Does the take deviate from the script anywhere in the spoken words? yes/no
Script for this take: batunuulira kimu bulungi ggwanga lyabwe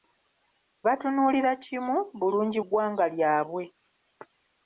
no